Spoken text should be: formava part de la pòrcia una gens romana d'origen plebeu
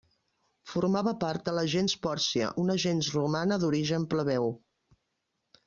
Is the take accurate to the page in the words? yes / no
no